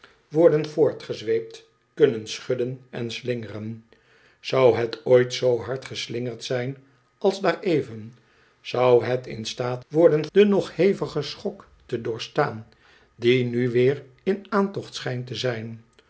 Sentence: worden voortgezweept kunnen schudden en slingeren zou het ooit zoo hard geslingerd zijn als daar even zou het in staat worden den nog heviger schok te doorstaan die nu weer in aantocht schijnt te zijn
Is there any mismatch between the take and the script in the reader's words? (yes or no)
no